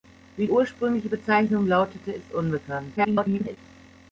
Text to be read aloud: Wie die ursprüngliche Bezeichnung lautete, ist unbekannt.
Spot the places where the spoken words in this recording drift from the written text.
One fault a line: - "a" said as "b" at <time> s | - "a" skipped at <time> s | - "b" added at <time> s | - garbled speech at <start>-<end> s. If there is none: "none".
- "die" skipped at 0.5 s
- garbled speech at 3.0-3.6 s